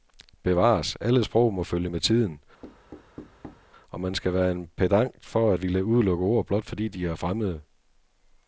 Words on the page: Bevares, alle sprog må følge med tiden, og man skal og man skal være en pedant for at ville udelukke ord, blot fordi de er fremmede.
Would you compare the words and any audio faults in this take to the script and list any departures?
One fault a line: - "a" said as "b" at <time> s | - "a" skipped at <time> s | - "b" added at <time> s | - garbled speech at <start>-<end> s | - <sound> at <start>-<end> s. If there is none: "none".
- thud at 2.6-3.7 s
- "og man skal" skipped at 4.3 s